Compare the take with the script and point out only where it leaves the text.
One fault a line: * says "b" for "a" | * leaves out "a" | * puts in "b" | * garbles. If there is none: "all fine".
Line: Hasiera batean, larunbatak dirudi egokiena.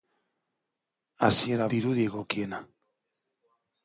* leaves out "batean larunbatak"